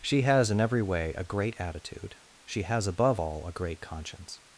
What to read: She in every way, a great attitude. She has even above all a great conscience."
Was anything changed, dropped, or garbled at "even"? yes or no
yes